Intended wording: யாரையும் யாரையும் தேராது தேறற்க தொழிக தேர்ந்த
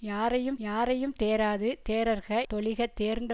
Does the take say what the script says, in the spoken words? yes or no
yes